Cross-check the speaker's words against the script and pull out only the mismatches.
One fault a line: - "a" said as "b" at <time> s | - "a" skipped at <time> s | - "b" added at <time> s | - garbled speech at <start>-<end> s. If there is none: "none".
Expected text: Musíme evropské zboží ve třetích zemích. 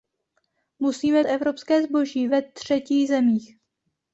none